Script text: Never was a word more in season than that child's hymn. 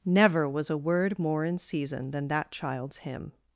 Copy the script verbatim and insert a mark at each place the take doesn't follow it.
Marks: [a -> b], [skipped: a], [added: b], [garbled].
Never was a word more in season than that child's hymn.